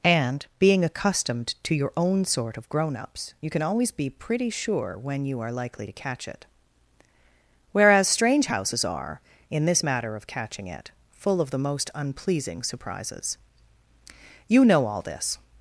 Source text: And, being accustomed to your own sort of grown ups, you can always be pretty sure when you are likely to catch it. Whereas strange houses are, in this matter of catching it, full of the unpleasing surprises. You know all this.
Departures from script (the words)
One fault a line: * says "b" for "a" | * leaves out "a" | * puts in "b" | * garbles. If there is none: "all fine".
* puts in "most"